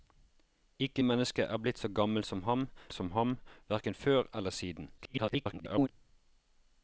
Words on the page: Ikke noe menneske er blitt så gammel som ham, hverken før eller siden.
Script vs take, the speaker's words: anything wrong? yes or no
yes